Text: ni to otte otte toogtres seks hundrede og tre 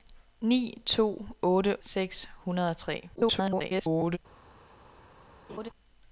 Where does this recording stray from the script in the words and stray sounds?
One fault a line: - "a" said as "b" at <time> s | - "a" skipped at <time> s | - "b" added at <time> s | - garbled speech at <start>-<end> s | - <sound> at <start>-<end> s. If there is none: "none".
- "otte toogtres" skipped at 1.8 s
- garbled speech at 3.2-4.2 s
- laugh at 5.5-5.7 s